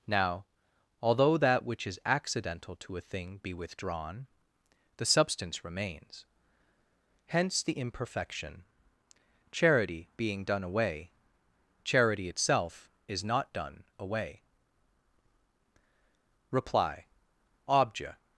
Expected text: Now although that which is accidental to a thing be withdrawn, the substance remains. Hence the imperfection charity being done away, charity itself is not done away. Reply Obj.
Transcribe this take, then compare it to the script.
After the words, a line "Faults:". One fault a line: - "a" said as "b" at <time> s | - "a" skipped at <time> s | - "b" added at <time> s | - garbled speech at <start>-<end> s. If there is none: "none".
Now although that which is accidental to a thing be withdrawn, the substance remains. Hence the imperfection charity being done away, charity itself is not done away. Reply Obj.
Faults:
none